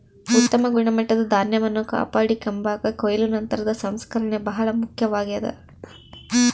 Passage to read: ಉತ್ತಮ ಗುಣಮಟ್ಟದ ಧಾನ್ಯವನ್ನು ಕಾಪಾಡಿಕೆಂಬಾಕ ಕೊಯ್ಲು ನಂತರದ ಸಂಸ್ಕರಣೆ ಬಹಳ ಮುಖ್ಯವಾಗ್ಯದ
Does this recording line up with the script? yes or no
yes